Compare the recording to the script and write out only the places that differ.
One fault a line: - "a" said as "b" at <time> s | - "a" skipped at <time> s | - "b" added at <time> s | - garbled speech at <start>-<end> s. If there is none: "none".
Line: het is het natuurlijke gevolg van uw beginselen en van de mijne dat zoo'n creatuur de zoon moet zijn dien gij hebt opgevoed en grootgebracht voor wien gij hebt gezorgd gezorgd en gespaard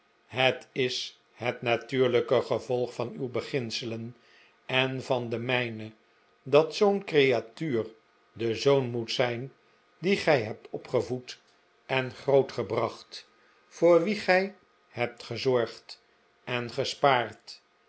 - "gezorgd" skipped at 16.0 s